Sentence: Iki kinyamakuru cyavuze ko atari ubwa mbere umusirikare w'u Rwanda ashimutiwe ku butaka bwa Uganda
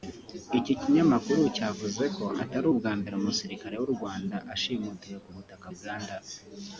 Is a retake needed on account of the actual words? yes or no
yes